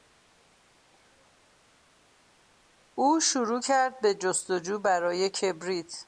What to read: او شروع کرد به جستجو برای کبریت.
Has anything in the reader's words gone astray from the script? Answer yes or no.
no